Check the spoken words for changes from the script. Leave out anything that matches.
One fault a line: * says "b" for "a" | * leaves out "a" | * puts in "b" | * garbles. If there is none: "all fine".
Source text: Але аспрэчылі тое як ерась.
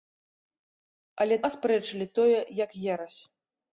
all fine